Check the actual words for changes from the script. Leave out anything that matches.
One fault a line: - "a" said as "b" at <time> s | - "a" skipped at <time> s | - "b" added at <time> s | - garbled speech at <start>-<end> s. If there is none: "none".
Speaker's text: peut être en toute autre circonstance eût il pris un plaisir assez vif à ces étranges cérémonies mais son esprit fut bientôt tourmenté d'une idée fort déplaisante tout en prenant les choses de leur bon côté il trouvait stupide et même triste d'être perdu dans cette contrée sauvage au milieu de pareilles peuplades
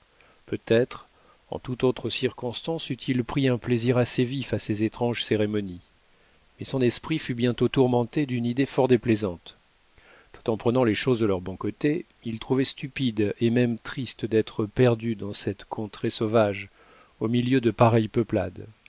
none